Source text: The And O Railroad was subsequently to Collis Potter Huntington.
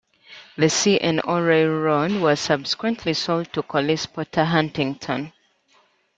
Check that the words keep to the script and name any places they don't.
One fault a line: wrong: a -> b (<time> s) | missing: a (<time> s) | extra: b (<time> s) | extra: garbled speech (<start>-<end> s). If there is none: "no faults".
extra: C (0.6 s)
extra: sold (3.1 s)